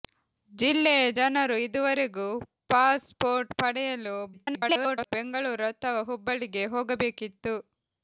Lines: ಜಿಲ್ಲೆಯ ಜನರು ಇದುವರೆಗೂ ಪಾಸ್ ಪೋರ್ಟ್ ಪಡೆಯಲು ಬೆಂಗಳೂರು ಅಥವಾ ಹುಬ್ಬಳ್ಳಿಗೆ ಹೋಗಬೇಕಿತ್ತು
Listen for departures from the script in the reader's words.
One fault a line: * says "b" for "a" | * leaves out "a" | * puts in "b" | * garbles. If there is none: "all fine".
* garbles